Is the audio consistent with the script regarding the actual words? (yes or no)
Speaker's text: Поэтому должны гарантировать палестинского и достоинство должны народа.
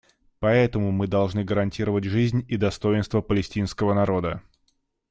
no